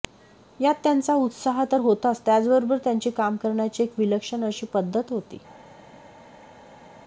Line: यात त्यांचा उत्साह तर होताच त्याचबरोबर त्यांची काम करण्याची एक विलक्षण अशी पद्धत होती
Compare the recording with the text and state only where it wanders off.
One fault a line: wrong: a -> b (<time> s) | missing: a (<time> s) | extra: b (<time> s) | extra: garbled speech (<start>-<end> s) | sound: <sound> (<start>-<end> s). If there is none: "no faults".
no faults